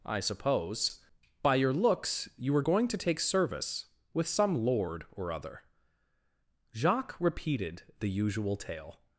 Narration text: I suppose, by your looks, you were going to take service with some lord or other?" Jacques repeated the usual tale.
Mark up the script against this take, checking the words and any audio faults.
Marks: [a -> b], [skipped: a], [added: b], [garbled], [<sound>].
I suppose, by your looks, you were going to take service with some lord or other?" Jacques repeated the usual tale.